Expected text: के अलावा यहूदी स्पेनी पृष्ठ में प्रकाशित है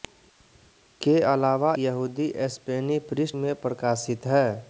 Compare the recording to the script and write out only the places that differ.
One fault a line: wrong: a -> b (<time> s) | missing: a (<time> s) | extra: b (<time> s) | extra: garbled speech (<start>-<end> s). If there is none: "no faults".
no faults